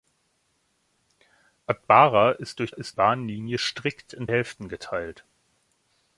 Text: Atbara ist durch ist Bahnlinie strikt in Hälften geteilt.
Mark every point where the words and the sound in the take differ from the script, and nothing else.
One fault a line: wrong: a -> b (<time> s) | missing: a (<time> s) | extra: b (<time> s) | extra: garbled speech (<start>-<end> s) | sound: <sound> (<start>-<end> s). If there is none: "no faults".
no faults